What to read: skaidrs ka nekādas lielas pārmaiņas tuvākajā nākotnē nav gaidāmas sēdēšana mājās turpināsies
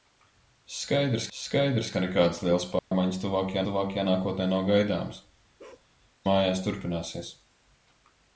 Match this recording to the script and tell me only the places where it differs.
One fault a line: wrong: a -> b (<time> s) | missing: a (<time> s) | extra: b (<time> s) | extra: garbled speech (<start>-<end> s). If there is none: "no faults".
extra: skaidrs (1.4 s)
extra: tuvākajā (3.7 s)
missing: sēdēšana (5.2 s)